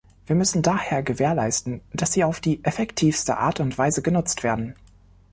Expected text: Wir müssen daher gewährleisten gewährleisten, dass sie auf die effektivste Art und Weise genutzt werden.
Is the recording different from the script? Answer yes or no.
yes